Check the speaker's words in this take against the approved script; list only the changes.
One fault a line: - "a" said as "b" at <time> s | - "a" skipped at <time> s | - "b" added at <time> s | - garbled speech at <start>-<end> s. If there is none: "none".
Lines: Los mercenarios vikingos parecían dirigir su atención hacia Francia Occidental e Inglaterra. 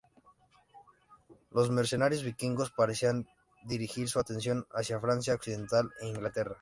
none